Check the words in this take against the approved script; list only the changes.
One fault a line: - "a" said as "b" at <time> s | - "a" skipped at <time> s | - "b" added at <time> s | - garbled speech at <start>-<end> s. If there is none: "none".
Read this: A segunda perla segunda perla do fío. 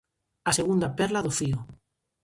- "segunda perla" skipped at 1.2 s